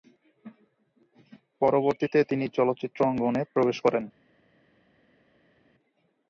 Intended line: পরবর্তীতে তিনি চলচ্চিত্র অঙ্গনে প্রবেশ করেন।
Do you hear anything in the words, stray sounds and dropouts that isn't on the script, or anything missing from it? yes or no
no